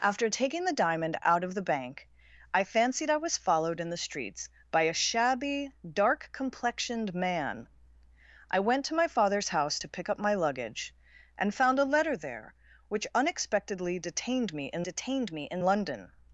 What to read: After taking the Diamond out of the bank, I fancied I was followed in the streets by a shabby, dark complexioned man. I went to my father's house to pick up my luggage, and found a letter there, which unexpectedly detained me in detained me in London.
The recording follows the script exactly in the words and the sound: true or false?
true